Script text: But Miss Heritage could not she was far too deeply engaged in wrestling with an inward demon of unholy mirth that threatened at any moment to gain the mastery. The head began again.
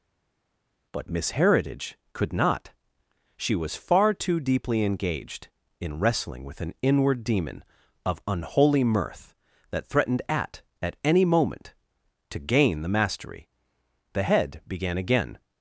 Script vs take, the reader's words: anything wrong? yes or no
yes